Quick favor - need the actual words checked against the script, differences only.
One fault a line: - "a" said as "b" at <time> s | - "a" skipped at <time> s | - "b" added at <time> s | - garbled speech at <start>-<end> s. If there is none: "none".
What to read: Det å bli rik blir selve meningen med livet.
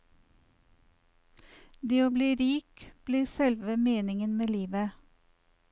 none